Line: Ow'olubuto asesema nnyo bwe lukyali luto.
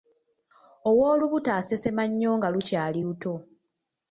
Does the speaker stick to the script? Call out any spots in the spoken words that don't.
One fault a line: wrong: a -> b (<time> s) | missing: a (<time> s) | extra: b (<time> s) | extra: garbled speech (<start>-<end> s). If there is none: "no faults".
wrong: bwe -> nga (2.4 s)